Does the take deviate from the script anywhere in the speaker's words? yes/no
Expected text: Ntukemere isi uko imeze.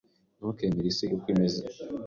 no